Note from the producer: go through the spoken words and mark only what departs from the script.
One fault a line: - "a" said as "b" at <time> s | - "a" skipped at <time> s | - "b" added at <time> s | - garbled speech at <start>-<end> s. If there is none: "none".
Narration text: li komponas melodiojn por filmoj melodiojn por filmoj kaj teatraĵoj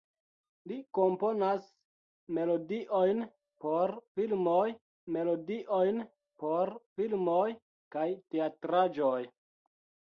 none